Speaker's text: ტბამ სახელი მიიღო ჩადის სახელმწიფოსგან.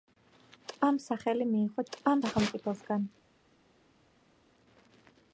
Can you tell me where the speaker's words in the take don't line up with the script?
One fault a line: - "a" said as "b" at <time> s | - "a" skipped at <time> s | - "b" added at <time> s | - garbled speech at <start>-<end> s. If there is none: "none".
- "ჩადის" said as "ტბამ" at 1.9 s